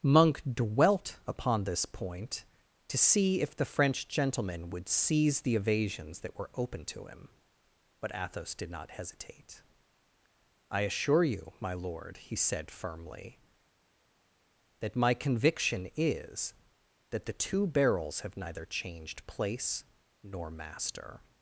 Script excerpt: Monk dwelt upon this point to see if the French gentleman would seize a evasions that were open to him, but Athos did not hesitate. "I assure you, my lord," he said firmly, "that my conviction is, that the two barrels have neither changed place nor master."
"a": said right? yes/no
no